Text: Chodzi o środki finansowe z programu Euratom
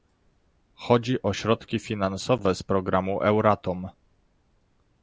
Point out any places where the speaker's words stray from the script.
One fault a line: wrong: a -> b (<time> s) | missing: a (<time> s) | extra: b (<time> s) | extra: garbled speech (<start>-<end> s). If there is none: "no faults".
no faults